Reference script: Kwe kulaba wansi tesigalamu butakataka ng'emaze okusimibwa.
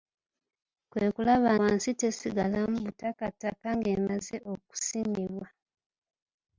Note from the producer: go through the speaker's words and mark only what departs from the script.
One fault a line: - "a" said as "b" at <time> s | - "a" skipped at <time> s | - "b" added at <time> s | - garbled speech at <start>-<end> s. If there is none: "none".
none